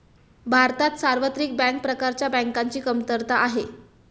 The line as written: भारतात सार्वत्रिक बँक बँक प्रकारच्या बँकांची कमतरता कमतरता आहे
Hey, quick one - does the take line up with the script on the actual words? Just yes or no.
no